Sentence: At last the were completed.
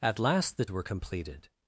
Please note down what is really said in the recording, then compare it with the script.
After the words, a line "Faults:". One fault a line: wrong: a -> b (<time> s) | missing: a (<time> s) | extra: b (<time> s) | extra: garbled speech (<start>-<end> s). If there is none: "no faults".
At last the were completed.
Faults:
no faults